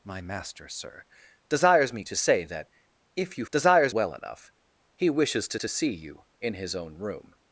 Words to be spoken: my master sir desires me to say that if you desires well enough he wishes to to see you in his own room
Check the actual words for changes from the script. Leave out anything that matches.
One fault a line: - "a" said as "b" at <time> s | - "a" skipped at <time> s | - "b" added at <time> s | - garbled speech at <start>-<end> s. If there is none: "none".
none